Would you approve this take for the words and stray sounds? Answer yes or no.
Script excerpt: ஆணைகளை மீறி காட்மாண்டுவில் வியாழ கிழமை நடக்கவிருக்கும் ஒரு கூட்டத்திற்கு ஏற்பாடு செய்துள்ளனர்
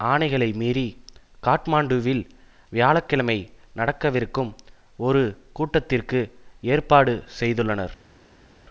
yes